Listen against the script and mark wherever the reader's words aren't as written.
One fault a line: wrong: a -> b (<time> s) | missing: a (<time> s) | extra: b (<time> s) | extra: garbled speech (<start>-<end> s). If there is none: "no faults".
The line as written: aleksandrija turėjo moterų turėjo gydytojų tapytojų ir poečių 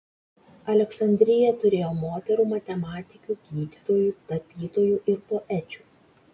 wrong: turėjo -> matematikių (2.5 s)